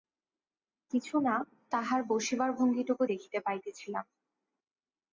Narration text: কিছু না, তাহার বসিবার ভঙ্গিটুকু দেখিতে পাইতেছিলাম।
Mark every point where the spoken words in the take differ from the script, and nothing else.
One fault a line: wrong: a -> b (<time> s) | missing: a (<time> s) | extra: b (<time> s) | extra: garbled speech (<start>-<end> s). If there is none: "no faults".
no faults